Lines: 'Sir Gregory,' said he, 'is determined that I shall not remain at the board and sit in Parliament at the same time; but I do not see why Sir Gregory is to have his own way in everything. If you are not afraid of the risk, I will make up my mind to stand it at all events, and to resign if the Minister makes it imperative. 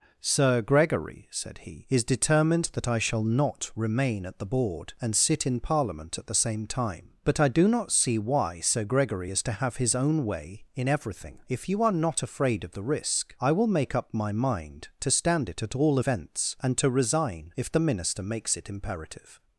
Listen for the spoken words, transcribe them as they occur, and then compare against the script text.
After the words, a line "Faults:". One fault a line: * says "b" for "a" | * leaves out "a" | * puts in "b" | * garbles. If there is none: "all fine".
'Sir Gregory,' said he, 'is determined that I shall not remain at the board and sit in Parliament at the same time; but I do not see why Sir Gregory is to have his own way in everything. If you are not afraid of the risk, I will make up my mind to stand it at all events, and to resign if the Minister makes it imperative.
Faults:
all fine